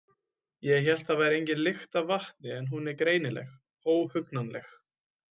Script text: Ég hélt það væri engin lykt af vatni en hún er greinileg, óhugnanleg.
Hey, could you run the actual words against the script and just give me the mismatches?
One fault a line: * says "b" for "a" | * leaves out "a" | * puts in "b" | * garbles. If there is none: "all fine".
all fine